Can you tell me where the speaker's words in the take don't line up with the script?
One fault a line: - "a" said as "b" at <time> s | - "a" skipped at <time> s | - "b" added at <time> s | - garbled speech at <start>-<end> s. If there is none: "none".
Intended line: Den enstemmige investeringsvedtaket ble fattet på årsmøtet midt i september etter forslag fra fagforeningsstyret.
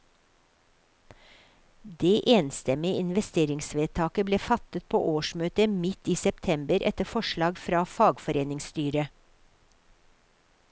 - "Den" said as "Det" at 2.0 s